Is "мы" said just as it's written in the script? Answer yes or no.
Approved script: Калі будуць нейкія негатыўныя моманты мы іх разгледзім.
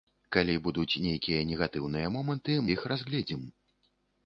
no